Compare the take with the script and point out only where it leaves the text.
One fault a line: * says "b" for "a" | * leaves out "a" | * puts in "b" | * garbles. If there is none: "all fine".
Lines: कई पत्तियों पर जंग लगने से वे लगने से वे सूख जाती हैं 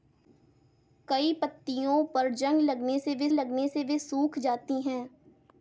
all fine